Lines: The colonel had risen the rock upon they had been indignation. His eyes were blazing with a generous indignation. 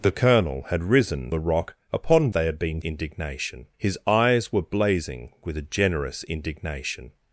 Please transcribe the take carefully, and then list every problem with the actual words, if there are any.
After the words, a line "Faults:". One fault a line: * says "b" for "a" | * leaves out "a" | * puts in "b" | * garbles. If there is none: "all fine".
The colonel had risen the rock upon they had been indignation. His eyes were blazing with a generous indignation.
Faults:
all fine